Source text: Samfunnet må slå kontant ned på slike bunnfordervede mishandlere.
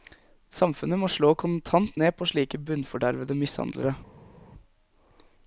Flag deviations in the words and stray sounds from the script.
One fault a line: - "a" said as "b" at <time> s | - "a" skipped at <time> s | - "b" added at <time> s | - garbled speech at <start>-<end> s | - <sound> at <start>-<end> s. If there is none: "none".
none